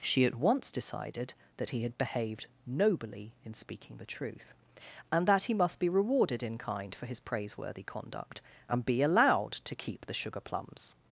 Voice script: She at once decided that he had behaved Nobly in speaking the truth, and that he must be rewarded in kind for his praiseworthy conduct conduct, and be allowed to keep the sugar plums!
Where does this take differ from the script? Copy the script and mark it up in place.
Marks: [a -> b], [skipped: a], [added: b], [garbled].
She at once decided that he had behaved Nobly in speaking the truth, and that he must be rewarded in kind for his praiseworthy conduct [skipped: conduct,] and be allowed to keep the sugar plums!